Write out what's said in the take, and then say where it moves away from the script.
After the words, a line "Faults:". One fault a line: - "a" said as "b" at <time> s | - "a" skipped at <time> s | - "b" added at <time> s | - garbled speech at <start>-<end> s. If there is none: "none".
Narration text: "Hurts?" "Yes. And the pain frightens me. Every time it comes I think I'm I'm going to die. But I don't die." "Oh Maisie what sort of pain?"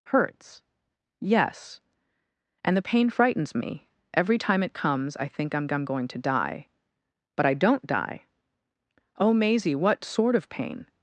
"Hurts?" "Yes. And the pain frightens me. Every time it comes I think I'm I'm going to die. But I don't die." "Oh Maisie what sort of pain?"
Faults:
none